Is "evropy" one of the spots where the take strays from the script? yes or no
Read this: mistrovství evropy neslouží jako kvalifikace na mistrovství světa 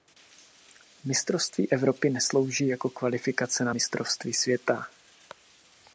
no